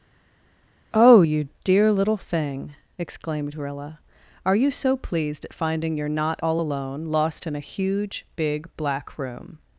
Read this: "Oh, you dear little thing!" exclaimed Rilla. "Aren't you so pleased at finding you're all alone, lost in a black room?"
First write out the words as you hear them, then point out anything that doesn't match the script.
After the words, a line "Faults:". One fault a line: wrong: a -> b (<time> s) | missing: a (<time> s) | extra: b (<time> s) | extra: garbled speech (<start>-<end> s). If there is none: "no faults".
"Oh, you dear little thing!" exclaimed Rilla. "Are you so pleased at finding you're not all alone, lost in a huge, big, black room?"
Faults:
wrong: Aren't -> Are (4.4 s)
extra: not (6.1 s)
extra: huge big (7.7 s)